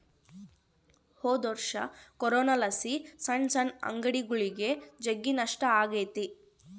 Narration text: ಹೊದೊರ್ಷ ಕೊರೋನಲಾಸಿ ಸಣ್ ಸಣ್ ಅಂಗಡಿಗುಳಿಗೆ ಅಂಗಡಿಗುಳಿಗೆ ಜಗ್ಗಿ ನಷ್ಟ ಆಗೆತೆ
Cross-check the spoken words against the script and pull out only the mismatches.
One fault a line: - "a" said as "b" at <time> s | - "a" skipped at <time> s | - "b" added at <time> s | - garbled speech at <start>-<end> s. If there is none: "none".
- "ಅಂಗಡಿಗುಳಿಗೆ" skipped at 4.7 s